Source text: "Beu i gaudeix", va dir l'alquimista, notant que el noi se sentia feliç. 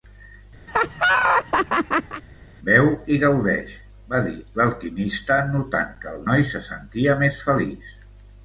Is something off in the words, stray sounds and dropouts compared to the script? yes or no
yes